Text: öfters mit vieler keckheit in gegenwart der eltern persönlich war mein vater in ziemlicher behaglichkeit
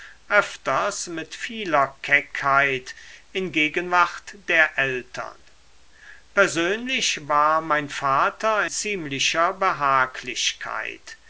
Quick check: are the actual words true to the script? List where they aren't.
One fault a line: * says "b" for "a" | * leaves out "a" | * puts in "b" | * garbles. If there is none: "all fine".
* leaves out "in"